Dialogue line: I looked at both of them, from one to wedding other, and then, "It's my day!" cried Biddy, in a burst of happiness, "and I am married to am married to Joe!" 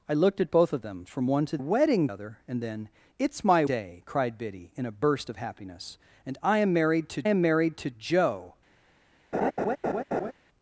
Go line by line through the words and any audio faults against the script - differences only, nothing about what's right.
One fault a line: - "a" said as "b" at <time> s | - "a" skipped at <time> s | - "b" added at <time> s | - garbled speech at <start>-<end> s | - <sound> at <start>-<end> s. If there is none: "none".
- laugh at 9.3-10.3 s